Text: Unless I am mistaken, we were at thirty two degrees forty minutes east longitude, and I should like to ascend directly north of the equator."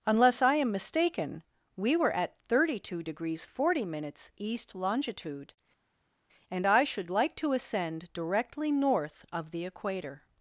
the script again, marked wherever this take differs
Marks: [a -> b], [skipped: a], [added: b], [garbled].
Unless I am mistaken, we were at thirty two degrees forty minutes east longitude, and I should like to ascend directly north of the equator."